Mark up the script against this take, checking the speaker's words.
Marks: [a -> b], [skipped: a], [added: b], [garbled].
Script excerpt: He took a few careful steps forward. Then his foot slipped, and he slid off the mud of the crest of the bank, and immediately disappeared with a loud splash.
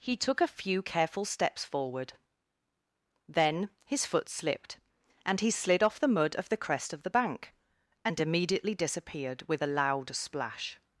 He took a few careful steps forward. Then his foot slipped, and he slid off the mud of the crest of the bank, and immediately disappeared with a loud splash.